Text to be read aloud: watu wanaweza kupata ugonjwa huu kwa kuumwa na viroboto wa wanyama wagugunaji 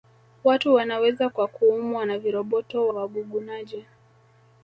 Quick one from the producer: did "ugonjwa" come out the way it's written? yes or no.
no